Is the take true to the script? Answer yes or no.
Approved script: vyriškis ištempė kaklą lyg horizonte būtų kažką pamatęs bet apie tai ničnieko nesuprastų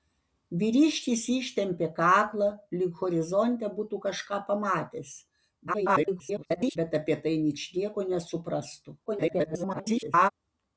no